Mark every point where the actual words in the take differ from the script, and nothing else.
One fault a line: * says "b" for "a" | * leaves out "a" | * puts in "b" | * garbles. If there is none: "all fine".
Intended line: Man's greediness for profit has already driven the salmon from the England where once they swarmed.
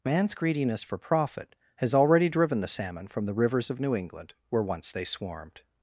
* puts in "rivers of New"